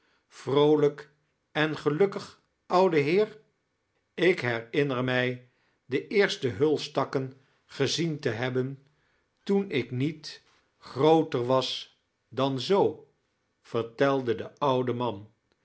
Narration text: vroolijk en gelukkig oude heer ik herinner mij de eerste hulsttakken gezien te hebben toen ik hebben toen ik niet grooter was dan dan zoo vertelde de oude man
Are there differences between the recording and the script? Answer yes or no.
yes